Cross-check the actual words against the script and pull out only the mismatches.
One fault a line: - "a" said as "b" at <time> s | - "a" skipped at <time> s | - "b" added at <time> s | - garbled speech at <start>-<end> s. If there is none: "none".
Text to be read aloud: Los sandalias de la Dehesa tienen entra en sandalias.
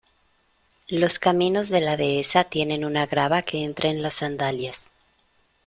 - "sandalias" said as "caminos" at 1.2 s
- "una grava que" added at 2.9 s
- "las" added at 4.0 s